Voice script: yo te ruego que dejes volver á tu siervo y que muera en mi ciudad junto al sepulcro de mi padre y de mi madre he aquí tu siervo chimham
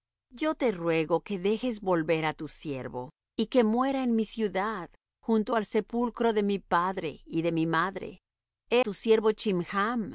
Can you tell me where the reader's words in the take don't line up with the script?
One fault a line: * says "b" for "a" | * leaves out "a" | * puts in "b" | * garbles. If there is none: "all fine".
* leaves out "aquí"